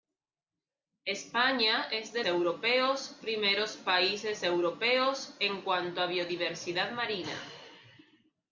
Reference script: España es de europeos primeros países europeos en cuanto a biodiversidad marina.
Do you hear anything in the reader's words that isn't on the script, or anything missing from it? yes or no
no